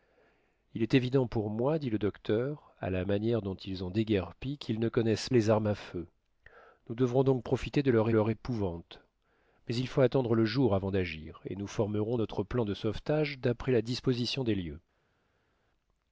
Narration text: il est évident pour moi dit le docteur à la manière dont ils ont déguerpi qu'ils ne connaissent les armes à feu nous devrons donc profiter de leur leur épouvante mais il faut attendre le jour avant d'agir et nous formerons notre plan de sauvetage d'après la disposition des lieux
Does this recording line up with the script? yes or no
yes